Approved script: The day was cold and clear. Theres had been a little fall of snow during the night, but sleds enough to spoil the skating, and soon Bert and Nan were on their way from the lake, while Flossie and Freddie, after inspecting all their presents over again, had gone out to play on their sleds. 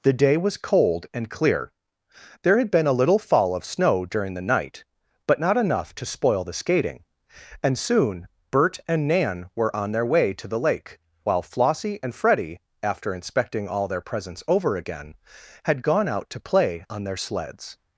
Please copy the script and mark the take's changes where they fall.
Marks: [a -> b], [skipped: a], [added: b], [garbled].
The day was cold and clear. [Theres -> There] had been a little fall of snow during the night, but [sleds -> not] enough to spoil the skating, and soon Bert and Nan were on their way [from -> to] the lake, while Flossie and Freddie, after inspecting all their presents over again, had gone out to play on their sleds.